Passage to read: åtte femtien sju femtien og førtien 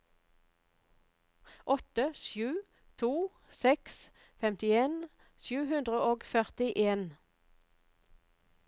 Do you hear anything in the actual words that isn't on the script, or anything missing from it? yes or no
yes